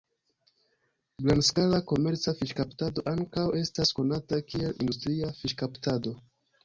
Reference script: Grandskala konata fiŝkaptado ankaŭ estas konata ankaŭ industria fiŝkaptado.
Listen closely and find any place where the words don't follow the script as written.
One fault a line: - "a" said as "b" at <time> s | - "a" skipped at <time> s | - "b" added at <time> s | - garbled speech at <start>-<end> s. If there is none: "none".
- "konata" said as "komerca" at 1.9 s
- "ankaŭ" said as "kiel" at 4.5 s